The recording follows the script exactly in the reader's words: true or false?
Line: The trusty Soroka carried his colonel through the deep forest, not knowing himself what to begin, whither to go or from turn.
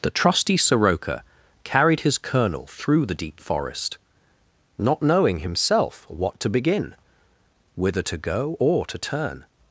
false